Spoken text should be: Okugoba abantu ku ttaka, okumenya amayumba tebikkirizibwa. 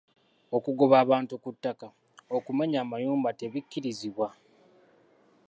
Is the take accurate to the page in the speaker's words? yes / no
yes